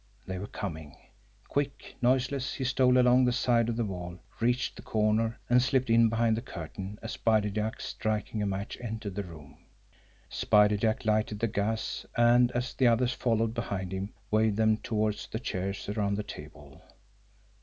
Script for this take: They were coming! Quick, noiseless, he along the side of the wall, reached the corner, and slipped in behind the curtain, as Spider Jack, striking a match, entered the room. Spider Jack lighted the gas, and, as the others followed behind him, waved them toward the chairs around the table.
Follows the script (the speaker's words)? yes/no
no